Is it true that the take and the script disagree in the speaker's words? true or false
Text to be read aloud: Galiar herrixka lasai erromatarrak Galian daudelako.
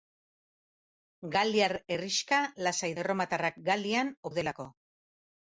false